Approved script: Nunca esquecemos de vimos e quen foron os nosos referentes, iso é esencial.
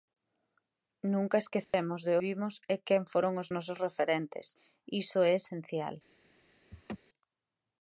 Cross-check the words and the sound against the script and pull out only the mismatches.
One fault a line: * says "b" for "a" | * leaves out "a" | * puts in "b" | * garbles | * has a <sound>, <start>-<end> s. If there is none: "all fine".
* has a dropout, 1.6-1.7 s
* has a laugh, 6.7-7.0 s